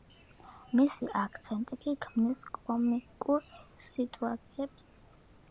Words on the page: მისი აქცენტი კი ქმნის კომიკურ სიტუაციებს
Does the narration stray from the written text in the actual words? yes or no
no